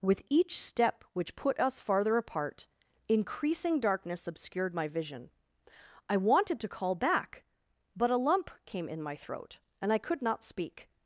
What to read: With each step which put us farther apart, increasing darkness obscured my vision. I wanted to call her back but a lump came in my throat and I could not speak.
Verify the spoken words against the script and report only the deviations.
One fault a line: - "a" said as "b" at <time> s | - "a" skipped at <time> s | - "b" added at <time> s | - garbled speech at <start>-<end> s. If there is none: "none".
- "her" skipped at 7.0 s